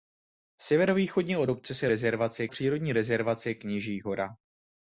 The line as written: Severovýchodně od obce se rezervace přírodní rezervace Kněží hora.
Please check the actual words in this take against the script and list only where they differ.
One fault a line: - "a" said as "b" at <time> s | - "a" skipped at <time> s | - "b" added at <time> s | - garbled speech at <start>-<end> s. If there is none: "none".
none